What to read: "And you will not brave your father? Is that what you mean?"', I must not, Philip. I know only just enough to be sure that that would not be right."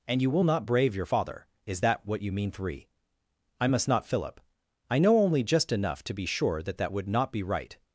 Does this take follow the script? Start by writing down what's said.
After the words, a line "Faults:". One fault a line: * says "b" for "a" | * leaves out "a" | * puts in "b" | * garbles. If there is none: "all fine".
"And you will not brave your father? Is that what you mean?"', three I must not, Philip. I know only just enough to be sure that that would not be right."
Faults:
* puts in "three"